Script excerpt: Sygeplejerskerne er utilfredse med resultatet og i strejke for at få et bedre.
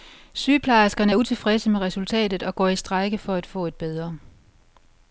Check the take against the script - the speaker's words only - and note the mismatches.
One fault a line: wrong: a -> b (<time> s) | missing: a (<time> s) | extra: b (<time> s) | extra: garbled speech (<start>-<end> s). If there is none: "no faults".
extra: går (2.5 s)